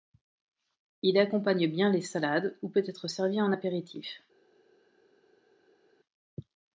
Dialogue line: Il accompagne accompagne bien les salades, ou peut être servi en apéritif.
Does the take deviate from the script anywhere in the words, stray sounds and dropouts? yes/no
yes